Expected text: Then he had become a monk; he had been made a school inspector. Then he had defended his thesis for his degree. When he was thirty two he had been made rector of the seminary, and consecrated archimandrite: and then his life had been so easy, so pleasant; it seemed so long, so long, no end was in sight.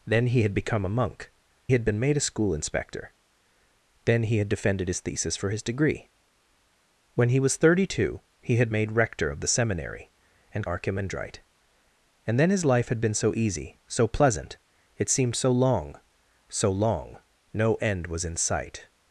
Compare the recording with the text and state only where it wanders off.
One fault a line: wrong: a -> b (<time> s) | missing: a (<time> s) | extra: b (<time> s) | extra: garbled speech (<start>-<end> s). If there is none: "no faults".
missing: he (1.3 s)
missing: been (8.7 s)
missing: consecrated (10.7 s)